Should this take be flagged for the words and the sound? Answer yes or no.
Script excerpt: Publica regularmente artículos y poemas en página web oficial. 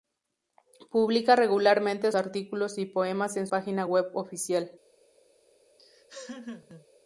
yes